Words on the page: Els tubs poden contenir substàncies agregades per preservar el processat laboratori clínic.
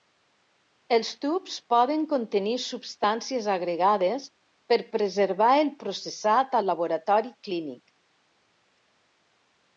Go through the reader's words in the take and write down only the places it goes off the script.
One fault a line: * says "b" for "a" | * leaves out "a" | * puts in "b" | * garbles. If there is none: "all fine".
* puts in "al"